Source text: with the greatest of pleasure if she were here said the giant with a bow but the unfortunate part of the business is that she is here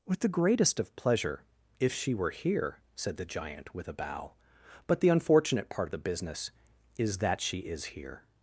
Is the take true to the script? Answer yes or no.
yes